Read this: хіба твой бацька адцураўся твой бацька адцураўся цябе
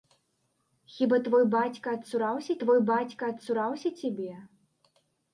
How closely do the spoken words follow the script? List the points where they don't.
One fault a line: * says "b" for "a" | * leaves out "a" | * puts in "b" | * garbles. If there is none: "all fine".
all fine